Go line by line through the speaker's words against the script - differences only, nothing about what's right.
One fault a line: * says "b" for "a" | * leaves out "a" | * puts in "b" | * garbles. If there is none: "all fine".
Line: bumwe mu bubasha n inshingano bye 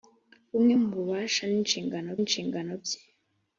* puts in "inshingano"